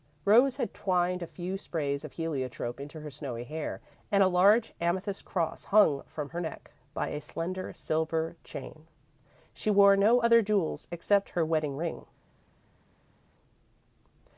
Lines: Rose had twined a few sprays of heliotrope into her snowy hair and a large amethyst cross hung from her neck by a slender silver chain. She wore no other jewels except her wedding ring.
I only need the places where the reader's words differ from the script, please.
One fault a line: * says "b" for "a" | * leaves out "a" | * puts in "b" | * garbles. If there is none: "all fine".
all fine